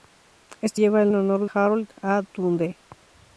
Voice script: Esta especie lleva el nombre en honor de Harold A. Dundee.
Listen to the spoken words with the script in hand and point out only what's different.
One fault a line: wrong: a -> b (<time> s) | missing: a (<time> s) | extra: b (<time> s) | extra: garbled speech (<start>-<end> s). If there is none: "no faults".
missing: especie (0.8 s)
missing: nombre (1.1 s)
missing: de (1.5 s)